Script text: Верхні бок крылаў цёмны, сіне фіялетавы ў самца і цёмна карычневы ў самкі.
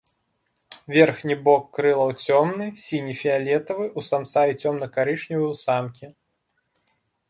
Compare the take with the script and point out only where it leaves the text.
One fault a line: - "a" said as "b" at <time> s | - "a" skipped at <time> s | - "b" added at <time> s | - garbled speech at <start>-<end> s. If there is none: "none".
none